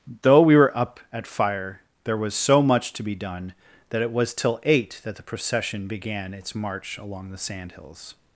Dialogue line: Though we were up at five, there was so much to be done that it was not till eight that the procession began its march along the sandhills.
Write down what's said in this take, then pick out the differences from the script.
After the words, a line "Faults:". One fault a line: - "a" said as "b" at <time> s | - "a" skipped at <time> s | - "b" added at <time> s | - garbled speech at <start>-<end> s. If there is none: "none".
Though we were up at fire, there was so much to be done that it was till eight that the procession began its march along the sandhills.
Faults:
- "five" said as "fire" at 1.3 s
- "not" skipped at 4.3 s